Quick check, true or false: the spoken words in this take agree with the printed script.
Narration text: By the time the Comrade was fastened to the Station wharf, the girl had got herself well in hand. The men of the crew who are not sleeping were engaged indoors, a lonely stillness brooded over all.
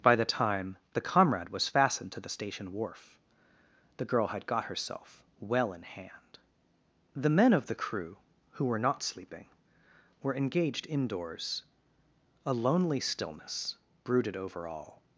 false